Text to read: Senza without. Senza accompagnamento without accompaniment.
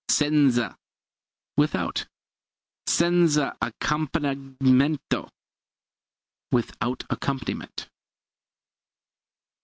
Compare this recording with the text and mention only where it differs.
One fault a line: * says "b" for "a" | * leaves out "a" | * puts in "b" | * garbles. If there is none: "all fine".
all fine